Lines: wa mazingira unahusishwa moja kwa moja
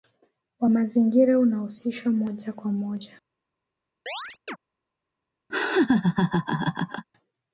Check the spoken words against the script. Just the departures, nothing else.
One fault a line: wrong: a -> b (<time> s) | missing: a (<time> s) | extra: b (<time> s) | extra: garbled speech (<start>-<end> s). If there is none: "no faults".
no faults